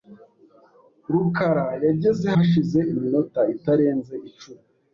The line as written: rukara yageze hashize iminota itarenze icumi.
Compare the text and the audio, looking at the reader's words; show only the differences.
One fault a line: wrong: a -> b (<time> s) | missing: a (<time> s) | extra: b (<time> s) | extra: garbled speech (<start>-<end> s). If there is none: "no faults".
no faults